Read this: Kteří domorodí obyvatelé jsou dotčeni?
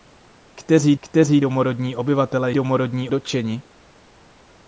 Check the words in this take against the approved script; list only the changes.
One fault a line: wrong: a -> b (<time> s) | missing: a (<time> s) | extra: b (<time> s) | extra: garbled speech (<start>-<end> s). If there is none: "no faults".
extra: kteří (1.0 s)
wrong: jsou -> domorodí (2.5 s)